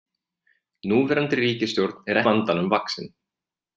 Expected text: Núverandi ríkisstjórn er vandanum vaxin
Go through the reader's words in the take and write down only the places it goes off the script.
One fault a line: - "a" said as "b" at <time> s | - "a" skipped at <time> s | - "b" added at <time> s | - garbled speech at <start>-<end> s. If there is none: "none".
none